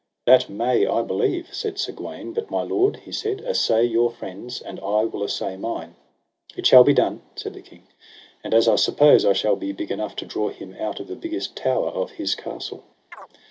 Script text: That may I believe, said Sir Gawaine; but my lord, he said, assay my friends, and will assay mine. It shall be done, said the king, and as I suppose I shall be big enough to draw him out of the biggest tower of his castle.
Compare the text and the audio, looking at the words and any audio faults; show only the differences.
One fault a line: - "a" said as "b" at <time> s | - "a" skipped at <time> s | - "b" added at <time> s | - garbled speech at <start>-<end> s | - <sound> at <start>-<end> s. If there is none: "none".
- "my" said as "your" at 3.9 s
- "I" added at 4.8 s
- chirp at 13.1-13.3 s